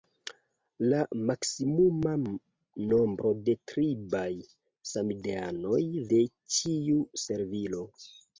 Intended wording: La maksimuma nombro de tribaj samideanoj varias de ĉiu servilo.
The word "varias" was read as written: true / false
false